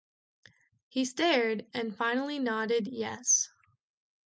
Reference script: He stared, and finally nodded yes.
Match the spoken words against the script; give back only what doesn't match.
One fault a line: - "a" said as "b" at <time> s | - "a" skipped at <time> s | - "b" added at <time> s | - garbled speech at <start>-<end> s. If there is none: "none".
none